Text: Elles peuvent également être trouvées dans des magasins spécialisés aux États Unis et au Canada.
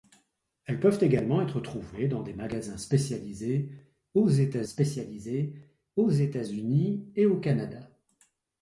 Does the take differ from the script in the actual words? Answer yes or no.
yes